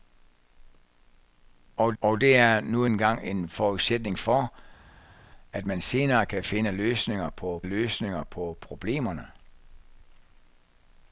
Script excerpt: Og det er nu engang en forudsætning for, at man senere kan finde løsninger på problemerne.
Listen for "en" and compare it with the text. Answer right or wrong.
right